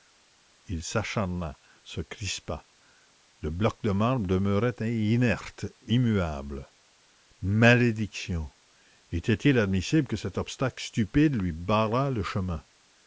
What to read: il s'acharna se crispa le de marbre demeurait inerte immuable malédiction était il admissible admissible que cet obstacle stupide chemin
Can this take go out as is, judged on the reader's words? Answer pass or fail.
fail